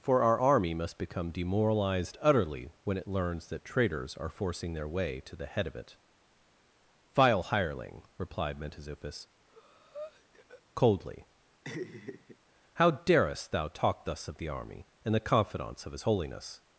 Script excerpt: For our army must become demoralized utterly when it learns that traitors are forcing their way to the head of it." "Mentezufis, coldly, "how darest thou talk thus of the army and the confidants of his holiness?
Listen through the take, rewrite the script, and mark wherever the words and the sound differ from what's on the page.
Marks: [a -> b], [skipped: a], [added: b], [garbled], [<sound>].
For our army must become demoralized utterly when it learns that traitors are forcing their way to the head of it." [added: Vile hireling replied] "Mentezufis, [breath] coldly, [laugh] "how darest thou talk thus of the army and the confidants of his holiness?